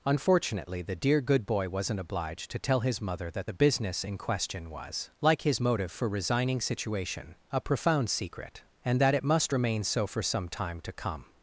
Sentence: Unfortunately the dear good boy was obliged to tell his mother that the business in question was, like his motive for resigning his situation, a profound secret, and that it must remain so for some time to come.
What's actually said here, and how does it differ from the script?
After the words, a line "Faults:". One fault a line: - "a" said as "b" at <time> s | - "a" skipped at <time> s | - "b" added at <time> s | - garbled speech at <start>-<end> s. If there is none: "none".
Unfortunately the dear good boy wasn't obliged to tell his mother that the business in question was, like his motive for resigning situation, a profound secret, and that it must remain so for some time to come.
Faults:
- "was" said as "wasn't" at 1.7 s
- "his" skipped at 6.6 s